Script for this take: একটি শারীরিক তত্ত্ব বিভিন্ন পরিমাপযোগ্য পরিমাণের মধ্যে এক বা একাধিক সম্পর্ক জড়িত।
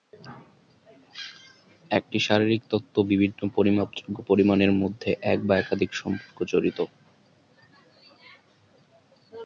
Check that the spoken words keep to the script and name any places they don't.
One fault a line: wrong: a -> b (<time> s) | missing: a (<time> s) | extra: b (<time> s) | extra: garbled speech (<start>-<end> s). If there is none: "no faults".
no faults